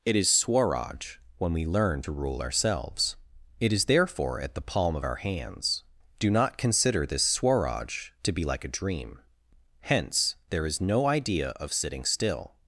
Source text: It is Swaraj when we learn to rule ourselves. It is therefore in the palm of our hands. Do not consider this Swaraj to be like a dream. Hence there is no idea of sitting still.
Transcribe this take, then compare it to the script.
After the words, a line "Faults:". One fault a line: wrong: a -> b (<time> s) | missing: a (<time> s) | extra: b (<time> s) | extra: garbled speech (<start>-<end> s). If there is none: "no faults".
It is Swaraj when we learn to rule ourselves. It is therefore at the palm of our hands. Do not consider this Swaraj to be like a dream. Hence there is no idea of sitting still.
Faults:
wrong: in -> at (4.4 s)